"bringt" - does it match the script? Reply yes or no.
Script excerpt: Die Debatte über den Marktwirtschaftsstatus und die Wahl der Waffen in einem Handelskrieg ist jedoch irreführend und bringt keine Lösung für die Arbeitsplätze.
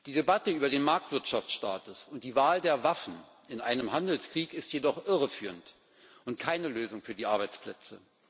no